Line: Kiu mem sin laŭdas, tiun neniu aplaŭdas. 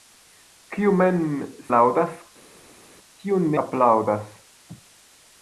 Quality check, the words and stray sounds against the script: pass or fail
fail